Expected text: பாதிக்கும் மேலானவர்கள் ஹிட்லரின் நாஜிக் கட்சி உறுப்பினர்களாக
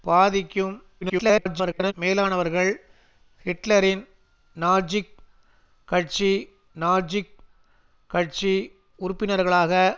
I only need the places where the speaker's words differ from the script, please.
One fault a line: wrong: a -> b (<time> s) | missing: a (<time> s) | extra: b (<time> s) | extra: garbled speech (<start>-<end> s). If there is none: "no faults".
extra: garbled speech (1.0-1.9 s)
extra: நாஜிக் கட்சி (6.7 s)